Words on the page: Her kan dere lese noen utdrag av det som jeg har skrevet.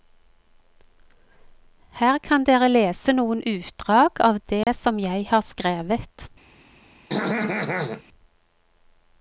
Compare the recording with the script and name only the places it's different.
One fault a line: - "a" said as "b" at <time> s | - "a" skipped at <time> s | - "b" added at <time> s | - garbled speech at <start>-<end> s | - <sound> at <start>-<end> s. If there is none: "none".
- dropout at 4.6-4.7 s
- throat clearing at 7.1-8.0 s